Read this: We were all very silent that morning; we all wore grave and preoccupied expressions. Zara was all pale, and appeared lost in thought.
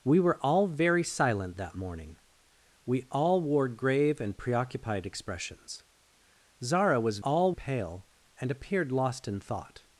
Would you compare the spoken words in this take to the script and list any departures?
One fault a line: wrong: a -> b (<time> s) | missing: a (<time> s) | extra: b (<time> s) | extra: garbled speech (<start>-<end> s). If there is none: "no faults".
no faults